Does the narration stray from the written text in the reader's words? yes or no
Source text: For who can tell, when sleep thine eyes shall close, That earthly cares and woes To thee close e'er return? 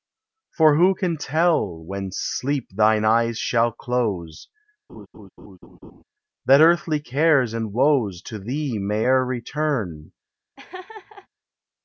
yes